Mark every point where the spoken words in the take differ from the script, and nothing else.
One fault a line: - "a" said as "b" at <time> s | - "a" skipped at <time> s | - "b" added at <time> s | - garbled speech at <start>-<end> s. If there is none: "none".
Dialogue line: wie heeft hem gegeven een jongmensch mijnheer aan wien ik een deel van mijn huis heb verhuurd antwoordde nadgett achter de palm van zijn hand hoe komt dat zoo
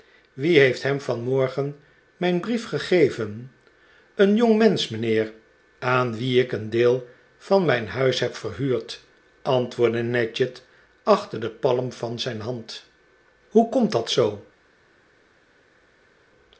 - "vanmorgen mijn brief" added at 1.0 s